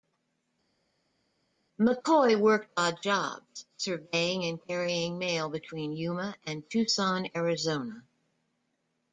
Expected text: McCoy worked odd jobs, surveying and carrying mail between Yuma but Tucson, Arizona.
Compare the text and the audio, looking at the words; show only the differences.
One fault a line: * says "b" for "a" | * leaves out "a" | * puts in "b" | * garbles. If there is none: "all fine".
* says "and" for "but"